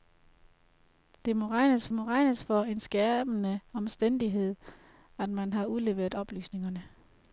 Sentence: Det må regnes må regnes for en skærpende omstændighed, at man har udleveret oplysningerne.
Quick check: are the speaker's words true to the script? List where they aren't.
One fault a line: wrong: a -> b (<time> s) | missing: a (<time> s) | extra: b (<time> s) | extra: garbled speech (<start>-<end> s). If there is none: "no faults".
no faults